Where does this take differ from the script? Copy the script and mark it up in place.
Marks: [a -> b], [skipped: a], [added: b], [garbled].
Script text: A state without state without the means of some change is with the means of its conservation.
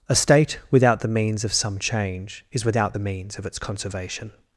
A state without [skipped: state without] the means of some change is [with -> without] the means of its conservation.